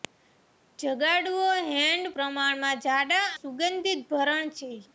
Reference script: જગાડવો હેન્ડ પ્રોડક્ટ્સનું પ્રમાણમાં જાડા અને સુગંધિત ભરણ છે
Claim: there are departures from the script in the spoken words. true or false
true